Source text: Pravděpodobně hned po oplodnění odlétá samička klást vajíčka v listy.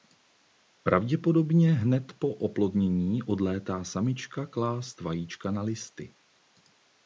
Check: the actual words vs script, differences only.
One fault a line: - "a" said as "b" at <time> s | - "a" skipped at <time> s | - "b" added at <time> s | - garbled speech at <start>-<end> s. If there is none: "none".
- "v" said as "na" at 5.5 s